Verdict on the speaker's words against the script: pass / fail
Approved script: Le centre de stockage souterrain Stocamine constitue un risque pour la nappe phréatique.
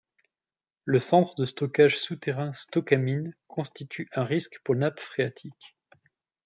fail